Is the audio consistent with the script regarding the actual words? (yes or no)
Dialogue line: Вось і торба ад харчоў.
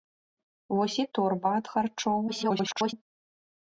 no